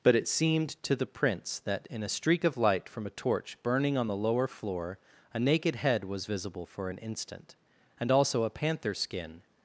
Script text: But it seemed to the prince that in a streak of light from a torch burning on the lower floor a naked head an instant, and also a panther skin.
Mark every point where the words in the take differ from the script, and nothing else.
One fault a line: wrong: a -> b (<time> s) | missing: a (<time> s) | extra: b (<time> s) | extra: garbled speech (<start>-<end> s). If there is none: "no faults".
extra: was visible for (6.0 s)